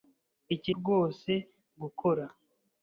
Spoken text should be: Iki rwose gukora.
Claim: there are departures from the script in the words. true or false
false